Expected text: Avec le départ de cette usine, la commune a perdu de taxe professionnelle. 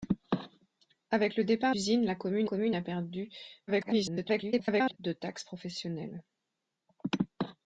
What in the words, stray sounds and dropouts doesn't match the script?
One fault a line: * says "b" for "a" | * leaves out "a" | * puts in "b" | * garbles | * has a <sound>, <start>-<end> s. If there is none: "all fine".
* leaves out "de cette"
* puts in "commune"
* garbles